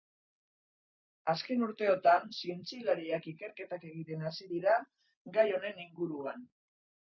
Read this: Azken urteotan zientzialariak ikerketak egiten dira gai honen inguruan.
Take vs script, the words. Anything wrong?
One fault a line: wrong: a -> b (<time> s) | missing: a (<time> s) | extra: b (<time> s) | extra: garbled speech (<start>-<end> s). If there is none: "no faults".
extra: hasi (4.3 s)